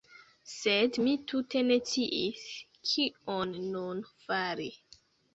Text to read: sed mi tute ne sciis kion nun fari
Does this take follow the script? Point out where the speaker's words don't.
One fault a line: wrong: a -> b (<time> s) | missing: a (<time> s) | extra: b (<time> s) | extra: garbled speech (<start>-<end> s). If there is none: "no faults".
no faults